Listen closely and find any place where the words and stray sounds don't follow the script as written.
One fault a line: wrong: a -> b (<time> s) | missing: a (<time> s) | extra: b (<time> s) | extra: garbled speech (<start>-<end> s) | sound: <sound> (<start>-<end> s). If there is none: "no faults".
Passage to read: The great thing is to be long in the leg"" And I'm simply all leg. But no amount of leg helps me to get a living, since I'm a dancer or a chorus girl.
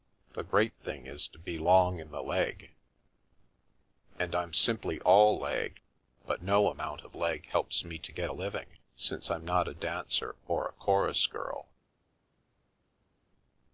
extra: not (9.4 s)